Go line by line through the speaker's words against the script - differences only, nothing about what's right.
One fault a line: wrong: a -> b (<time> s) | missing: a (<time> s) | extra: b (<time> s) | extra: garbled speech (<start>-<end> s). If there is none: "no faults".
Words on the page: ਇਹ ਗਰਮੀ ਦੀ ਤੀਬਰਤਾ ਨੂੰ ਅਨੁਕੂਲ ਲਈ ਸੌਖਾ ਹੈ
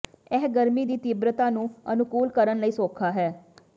extra: ਕਰਨ (2.3 s)